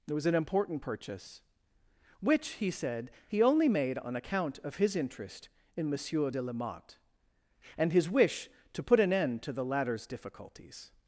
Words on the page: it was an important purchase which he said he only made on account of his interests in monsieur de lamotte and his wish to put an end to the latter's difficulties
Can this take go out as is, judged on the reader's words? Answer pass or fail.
fail